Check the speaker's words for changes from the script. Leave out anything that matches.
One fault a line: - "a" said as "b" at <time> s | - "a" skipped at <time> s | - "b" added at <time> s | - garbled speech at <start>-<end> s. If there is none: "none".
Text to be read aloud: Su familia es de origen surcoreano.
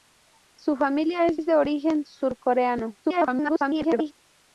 - "es" added at 1.4 s
- garbled speech at 3.0-4.1 s